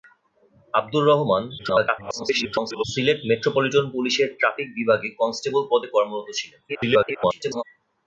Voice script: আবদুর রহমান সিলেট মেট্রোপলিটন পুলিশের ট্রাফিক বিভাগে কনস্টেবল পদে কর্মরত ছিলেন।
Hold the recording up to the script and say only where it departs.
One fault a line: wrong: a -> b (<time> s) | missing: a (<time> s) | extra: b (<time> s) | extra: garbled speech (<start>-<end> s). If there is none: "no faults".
extra: garbled speech (1.6-2.8 s)
extra: garbled speech (6.7-7.6 s)